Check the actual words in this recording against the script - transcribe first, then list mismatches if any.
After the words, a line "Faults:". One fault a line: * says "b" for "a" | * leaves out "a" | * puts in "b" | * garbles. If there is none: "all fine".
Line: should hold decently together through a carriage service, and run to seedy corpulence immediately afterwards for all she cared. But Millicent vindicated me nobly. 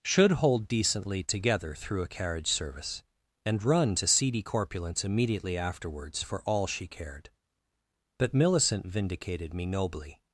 should hold decently together through a carriage service, and run to seedy corpulence immediately afterwards for all she cared. But Millicent vindicated me nobly.
Faults:
all fine